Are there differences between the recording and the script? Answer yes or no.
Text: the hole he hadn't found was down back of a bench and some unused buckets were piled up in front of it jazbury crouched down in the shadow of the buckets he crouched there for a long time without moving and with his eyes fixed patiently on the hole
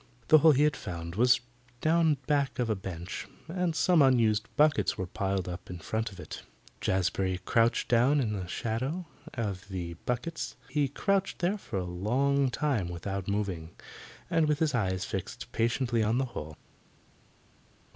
yes